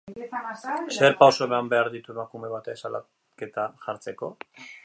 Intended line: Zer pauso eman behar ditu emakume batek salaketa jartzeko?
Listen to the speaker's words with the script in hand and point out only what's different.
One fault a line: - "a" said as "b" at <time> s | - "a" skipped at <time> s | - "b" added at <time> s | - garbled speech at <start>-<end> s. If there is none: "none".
none